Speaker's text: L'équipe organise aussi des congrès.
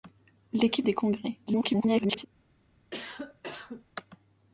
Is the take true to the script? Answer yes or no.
no